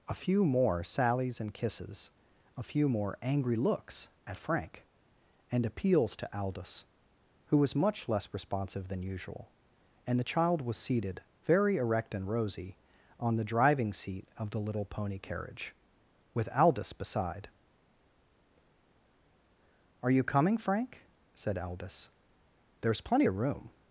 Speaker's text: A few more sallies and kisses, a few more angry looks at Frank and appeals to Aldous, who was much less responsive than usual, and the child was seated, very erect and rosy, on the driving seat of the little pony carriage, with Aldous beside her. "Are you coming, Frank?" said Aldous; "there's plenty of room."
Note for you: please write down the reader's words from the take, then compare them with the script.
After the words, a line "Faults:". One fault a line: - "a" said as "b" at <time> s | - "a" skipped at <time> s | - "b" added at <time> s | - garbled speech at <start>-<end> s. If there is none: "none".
A few more sallies and kisses, a few more angry looks at Frank and appeals to Aldous, who was much less responsive than usual, and the child was seated, very erect and rosy, on the driving seat of the little pony carriage, with Aldous beside. "Are you coming, Frank?" said Aldous; "there's plenty of room."
Faults:
- "her" skipped at 17.5 s